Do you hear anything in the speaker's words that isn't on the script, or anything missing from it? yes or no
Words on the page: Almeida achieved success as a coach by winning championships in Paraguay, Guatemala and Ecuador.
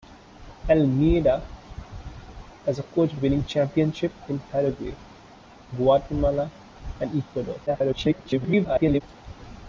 yes